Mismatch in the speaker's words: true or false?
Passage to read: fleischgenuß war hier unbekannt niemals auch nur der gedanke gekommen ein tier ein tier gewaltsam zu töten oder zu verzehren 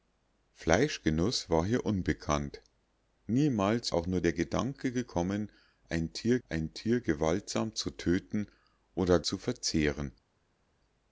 false